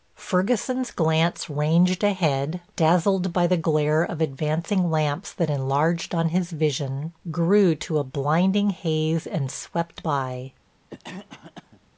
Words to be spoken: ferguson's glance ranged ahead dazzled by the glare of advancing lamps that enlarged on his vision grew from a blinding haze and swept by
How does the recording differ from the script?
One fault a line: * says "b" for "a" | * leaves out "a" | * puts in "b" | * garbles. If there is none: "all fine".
* says "to" for "from"